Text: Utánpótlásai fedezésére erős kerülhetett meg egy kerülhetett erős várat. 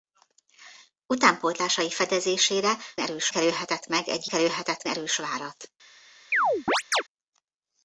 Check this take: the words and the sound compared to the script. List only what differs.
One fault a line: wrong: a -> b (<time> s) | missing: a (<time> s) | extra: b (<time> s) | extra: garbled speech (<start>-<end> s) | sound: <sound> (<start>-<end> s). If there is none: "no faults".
sound: chirp (6.3-7.0 s)